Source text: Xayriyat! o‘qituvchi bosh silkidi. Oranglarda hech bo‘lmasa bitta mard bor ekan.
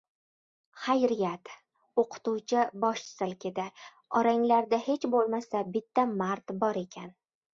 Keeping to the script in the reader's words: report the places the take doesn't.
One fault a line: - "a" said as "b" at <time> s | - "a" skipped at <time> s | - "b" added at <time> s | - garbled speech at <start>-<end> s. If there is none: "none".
none